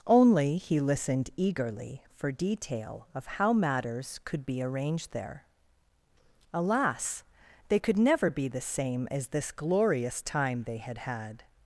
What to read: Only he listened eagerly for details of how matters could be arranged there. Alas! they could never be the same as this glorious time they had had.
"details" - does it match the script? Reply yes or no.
no